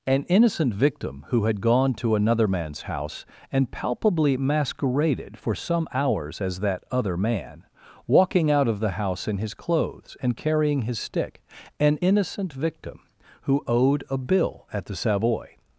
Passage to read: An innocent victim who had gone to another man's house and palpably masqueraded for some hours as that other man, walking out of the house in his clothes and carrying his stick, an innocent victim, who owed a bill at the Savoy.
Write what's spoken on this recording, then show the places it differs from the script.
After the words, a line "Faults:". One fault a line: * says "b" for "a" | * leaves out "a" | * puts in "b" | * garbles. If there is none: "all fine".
An innocent victim who had gone to another man's house and palpably masqueraded for some hours as that other man, walking out of the house in his clothes and carrying his stick, an innocent victim, who owed a bill at the Savoy.
Faults:
all fine